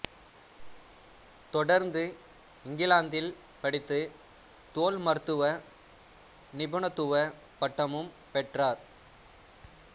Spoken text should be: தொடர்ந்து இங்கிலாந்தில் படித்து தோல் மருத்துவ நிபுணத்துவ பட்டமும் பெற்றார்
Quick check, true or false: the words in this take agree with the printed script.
true